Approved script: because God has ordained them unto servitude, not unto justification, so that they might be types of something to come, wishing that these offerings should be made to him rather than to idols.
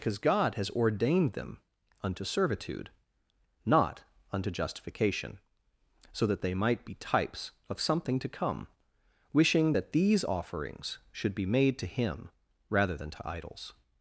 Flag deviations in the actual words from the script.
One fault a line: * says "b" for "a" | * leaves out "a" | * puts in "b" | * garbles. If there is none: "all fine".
all fine